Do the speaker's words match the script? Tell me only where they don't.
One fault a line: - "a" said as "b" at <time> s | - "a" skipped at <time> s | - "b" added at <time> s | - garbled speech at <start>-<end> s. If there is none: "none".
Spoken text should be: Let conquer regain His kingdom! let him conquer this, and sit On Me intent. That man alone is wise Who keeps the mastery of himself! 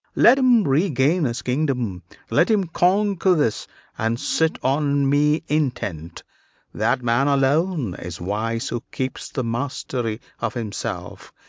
- "conquer" said as "him" at 0.4 s